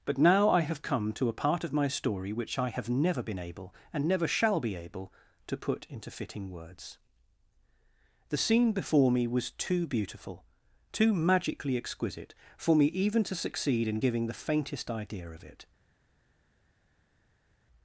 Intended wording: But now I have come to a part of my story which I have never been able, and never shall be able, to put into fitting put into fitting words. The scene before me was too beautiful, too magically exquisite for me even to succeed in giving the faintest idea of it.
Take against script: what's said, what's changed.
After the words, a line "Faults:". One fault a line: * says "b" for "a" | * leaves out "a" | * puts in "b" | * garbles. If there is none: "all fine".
But now I have come to a part of my story which I have never been able, and never shall be able, to put into fitting words. The scene before me was too beautiful, too magically exquisite for me even to succeed in giving the faintest idea of it.
Faults:
* leaves out "put into fitting"